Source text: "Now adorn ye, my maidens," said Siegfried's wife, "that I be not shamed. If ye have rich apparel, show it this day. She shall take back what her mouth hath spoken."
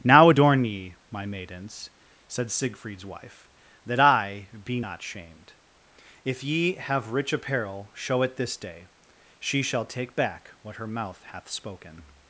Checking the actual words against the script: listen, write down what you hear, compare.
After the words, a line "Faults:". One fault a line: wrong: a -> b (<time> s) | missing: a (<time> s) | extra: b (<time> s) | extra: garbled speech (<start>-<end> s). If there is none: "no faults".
"Now adorn ye, my maidens," said Siegfried's wife, "that I be not shamed. If ye have rich apparel, show it this day. She shall take back what her mouth hath spoken."
Faults:
no faults